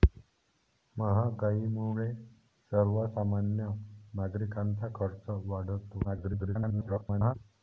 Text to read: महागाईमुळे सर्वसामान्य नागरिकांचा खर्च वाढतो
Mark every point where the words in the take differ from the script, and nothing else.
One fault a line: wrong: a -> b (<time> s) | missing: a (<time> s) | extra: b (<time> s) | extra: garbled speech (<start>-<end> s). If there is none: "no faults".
extra: garbled speech (6.0-7.3 s)